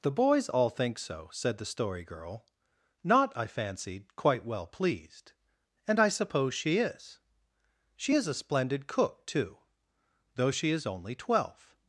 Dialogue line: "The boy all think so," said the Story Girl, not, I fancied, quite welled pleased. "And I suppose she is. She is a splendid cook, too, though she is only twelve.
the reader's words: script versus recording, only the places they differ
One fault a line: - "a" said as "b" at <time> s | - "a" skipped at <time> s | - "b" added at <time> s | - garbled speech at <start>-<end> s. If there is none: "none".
- "boy" said as "boys" at 0.1 s
- "welled" said as "well" at 4.5 s